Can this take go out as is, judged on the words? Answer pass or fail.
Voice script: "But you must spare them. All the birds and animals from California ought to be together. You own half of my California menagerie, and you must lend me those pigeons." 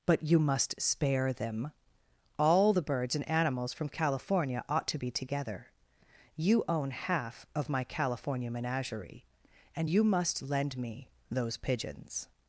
pass